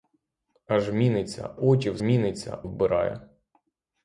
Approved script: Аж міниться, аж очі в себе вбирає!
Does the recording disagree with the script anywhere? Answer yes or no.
yes